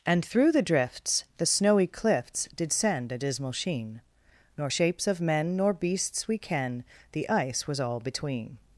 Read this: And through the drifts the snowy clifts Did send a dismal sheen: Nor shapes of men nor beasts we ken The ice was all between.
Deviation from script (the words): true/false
false